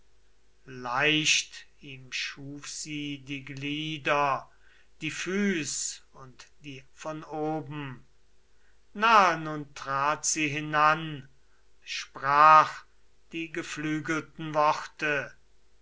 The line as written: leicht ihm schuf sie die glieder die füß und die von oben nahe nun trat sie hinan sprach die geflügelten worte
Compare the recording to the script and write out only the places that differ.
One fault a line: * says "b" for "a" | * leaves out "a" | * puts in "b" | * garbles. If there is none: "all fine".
all fine